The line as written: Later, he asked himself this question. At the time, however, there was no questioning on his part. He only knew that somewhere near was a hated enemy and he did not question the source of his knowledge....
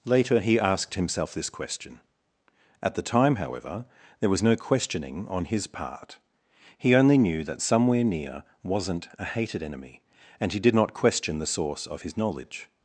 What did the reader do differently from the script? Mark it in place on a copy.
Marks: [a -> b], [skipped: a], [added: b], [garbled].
Later, he asked himself this question. At the time, however, there was no questioning on his part. He only knew that somewhere near [was -> wasn't] a hated enemy and he did not question the source of his knowledge....